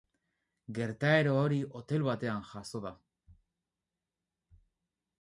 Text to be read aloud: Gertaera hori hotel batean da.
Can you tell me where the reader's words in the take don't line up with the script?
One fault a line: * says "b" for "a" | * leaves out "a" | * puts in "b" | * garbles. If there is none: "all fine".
* puts in "jazo"